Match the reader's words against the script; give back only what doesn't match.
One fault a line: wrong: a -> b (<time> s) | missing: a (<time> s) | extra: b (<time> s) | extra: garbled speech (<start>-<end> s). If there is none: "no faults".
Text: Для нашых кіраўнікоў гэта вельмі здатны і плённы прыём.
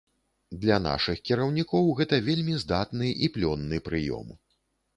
no faults